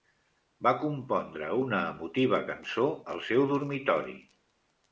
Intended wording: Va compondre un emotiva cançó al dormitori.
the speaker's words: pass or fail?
fail